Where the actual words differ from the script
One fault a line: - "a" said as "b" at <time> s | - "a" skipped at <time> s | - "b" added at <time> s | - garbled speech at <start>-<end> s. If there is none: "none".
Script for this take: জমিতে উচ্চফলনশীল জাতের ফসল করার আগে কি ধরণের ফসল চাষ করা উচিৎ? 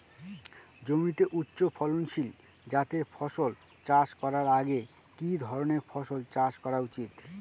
- "চাষ" added at 3.9 s